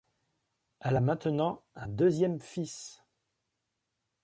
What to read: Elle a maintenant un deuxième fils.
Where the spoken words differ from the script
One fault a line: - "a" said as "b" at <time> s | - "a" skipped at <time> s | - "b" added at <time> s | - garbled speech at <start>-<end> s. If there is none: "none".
none